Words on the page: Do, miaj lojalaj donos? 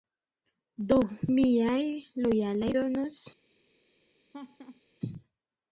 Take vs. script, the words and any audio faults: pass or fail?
fail